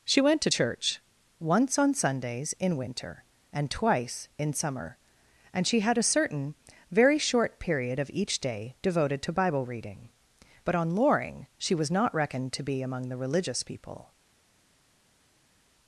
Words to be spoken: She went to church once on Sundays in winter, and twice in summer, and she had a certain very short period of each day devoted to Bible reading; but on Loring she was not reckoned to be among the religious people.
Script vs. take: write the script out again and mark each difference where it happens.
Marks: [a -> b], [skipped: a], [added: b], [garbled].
She went to church once on Sundays in winter, and twice in summer, and she had a certain very short period of each day devoted to Bible reading; but on Loring she was not reckoned to be among the religious people.